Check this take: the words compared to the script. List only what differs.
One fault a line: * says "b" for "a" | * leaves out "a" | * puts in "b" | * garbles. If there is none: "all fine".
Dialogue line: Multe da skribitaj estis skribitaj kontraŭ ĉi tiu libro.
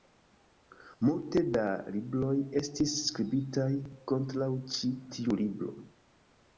* says "libroj" for "skribitaj"